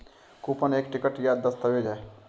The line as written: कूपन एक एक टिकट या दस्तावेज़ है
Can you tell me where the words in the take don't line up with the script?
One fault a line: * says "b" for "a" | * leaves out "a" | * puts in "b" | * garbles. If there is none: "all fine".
* leaves out "एक"